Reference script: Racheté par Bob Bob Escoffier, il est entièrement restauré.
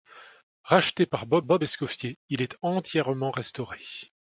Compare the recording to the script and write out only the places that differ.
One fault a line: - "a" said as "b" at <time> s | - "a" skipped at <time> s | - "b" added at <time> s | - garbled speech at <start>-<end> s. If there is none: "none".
none